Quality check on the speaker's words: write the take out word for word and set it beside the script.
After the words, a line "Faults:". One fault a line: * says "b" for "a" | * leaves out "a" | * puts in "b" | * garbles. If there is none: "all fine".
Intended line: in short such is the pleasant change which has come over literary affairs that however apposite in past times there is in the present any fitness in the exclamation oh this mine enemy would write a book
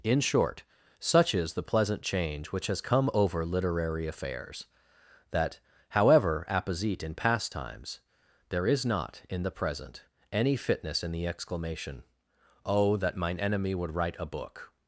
in short such is the pleasant change which has come over literary affairs that however apposite in past times there is not in the present any fitness in the exclamation oh that mine enemy would write a book
Faults:
* puts in "not"
* says "that" for "this"